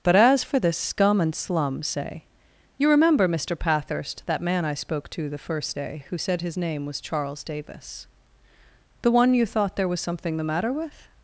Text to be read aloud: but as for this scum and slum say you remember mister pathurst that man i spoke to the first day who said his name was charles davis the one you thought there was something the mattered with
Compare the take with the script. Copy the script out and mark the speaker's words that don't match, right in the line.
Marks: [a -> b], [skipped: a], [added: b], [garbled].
but as for this scum and slum say you remember mister pathurst that man i spoke to the first day who said his name was charles davis the one you thought there was something the [mattered -> matter] with